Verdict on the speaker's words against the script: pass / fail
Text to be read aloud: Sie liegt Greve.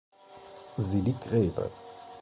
pass